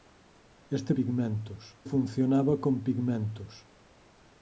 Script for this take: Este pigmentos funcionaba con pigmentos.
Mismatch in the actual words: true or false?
false